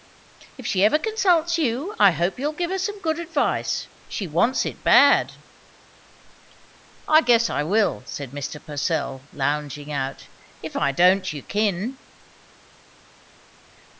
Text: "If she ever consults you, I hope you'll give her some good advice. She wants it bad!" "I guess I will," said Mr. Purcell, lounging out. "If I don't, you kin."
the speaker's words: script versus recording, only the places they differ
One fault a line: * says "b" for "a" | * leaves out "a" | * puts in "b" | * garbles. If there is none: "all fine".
all fine